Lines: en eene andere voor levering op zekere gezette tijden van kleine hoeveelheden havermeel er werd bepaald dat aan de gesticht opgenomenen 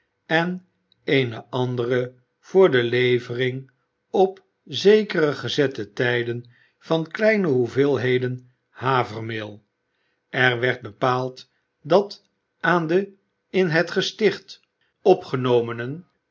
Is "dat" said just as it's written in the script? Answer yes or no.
yes